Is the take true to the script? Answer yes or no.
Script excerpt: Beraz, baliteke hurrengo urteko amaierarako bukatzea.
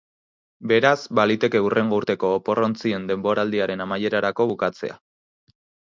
no